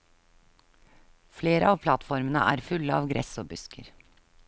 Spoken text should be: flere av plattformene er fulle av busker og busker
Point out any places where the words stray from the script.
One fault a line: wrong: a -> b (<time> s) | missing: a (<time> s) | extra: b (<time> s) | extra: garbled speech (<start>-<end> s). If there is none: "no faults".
wrong: busker -> gress (3.1 s)